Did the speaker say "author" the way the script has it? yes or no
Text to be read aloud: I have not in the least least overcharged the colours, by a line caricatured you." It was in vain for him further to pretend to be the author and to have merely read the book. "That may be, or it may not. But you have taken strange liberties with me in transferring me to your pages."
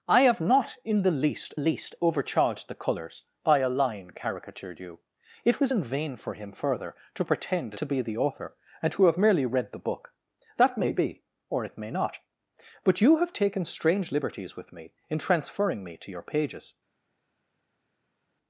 yes